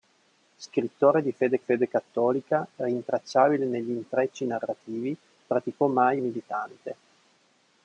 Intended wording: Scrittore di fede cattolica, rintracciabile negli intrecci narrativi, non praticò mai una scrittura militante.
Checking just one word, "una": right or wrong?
wrong